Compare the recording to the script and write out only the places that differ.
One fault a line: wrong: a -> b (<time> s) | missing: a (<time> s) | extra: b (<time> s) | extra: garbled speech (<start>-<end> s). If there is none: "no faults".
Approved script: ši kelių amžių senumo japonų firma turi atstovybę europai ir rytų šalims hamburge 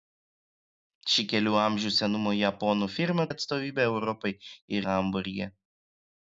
missing: turi (3.2 s)
missing: rytų šalims (4.9 s)